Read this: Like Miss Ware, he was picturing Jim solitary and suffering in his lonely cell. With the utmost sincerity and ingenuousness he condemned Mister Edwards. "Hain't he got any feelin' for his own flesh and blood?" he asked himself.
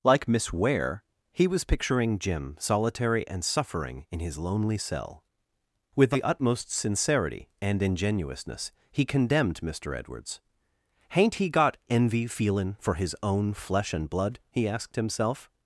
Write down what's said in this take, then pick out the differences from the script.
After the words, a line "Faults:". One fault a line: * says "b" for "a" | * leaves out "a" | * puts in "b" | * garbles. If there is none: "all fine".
Like Miss Ware, he was picturing Jim solitary and suffering in his lonely cell. With the utmost sincerity and ingenuousness he condemned Mister Edwards. "Hain't he got envy feelin' for his own flesh and blood?" he asked himself.
Faults:
* says "envy" for "any"